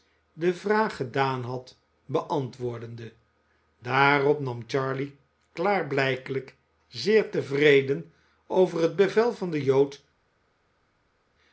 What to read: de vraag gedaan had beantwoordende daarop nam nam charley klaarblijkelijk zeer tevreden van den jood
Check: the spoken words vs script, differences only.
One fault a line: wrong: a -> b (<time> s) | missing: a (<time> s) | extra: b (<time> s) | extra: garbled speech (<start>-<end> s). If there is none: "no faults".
missing: nam (4.6 s)
extra: over het bevel (8.5 s)